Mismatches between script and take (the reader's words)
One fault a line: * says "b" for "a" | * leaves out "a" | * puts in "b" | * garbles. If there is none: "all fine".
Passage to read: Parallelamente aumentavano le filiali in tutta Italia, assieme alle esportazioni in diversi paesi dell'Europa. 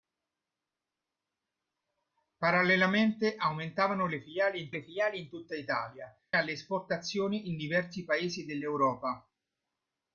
* puts in "le filiali in"
* leaves out "assieme"